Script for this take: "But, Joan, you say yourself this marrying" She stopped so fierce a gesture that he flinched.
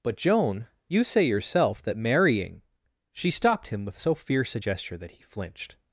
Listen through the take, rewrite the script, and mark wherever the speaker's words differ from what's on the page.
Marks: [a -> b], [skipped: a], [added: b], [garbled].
"But, Joan, you say yourself [this -> that] marrying" She stopped [added: him with] so fierce a gesture that he flinched.